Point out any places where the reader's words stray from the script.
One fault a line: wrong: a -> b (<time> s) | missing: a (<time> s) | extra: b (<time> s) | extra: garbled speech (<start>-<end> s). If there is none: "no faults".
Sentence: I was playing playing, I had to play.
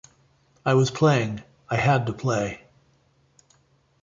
missing: playing (1.4 s)